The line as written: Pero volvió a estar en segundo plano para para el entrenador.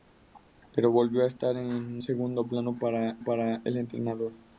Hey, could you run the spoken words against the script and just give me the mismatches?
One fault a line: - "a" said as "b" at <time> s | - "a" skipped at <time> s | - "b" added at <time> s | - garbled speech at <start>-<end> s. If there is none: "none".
none